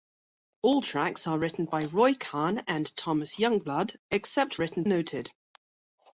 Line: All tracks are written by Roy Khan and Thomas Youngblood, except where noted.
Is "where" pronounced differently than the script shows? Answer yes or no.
yes